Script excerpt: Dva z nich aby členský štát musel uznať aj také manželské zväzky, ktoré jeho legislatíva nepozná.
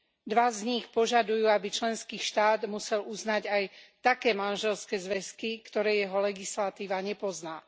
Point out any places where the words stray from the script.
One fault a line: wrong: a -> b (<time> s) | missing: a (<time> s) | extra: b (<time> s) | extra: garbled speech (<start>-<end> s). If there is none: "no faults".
extra: požadujú (0.9 s)